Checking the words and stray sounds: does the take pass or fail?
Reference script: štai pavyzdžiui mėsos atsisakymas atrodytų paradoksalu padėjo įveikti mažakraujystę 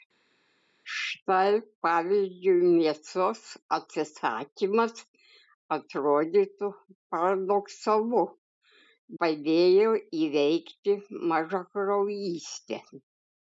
pass